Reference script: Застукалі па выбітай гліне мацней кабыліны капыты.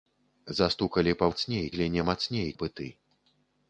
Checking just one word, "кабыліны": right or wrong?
wrong